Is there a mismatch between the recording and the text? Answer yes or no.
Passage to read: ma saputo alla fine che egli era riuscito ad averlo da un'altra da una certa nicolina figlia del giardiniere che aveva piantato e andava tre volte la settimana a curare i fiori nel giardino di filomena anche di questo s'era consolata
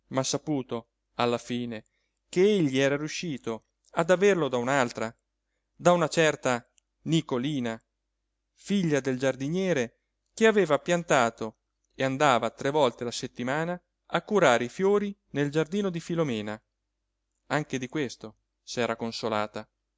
no